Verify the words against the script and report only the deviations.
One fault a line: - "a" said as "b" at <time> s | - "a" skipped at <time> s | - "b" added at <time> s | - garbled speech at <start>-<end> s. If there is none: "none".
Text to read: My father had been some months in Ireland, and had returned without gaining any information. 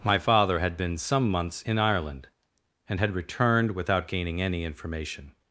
none